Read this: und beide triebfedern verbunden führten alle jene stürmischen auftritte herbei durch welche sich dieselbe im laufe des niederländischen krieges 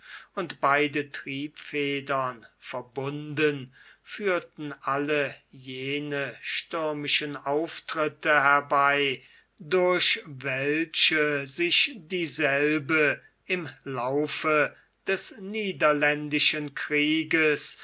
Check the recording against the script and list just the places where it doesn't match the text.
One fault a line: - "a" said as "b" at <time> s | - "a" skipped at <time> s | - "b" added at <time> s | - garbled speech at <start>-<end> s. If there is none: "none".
none